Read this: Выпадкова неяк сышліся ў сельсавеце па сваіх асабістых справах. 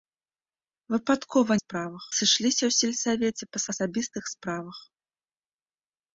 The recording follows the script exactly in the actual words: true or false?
false